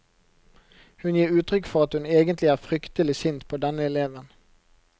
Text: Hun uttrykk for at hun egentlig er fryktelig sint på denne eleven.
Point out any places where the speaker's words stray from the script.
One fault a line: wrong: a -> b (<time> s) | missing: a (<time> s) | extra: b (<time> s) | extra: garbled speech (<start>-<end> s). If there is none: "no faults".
extra: gir (1.2 s)